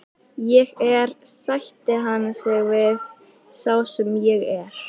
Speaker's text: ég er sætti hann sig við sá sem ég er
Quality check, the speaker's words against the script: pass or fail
pass